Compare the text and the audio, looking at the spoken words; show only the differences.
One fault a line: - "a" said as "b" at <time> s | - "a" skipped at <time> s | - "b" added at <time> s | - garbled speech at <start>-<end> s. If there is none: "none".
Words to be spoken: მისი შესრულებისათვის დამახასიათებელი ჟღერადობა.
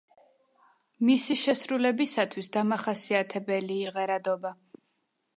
none